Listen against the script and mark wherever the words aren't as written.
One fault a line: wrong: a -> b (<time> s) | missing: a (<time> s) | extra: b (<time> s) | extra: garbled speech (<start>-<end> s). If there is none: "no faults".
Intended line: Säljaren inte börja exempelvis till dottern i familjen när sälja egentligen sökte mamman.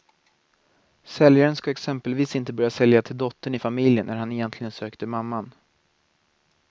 extra: ska exempelvis (1.6 s)
wrong: exempelvis -> sälja (2.7 s)
wrong: sälja -> han (4.2 s)